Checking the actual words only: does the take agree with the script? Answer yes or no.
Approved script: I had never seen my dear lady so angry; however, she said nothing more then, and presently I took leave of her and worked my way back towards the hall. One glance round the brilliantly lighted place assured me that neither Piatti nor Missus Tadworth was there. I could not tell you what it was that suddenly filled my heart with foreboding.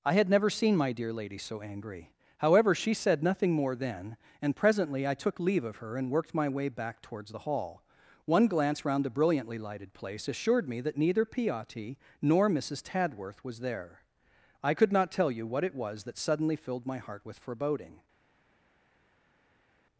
yes